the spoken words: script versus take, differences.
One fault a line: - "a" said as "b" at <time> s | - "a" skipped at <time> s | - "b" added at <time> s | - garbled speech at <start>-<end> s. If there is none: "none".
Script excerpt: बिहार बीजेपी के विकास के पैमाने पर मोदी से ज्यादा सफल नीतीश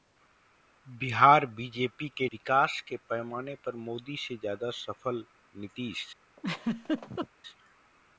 none